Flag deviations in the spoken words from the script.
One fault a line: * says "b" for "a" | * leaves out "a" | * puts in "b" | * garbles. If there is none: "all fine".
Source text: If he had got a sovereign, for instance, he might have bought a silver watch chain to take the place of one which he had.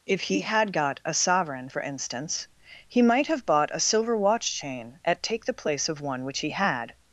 * says "at" for "to"